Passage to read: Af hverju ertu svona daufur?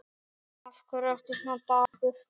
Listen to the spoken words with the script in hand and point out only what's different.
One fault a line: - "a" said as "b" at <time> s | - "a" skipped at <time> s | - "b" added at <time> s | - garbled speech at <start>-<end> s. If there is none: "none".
none